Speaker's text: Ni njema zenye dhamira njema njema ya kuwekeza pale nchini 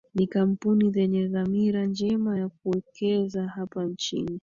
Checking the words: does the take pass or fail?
fail